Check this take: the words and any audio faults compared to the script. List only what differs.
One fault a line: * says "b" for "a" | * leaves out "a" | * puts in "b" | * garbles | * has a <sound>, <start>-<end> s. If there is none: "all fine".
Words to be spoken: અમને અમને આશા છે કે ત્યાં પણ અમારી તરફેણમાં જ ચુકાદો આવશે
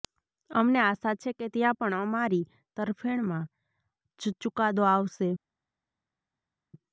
* leaves out "અમને"